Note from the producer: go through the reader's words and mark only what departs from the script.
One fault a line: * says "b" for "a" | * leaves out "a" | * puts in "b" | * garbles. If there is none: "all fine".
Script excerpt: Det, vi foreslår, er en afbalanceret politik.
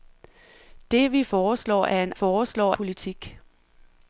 * says "foreslår" for "afbalanceret"